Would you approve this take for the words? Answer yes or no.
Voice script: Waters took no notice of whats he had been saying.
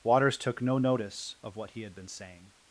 no